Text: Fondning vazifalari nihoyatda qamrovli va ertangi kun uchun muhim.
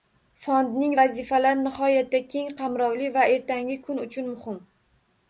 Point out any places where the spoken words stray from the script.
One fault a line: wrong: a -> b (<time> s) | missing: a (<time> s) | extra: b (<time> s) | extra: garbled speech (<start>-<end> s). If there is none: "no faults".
extra: keng (2.3 s)